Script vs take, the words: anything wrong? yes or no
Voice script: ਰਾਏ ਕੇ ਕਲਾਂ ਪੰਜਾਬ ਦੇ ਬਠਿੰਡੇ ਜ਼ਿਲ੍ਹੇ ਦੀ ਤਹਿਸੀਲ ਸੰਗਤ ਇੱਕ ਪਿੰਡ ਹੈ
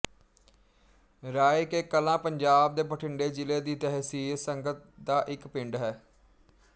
yes